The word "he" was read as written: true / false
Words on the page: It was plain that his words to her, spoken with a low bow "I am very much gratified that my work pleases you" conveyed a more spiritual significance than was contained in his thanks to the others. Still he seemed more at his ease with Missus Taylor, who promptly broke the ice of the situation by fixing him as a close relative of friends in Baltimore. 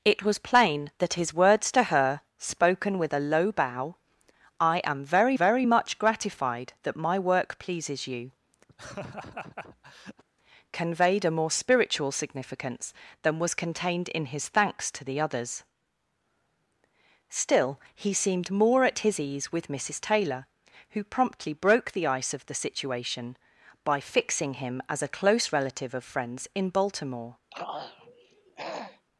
true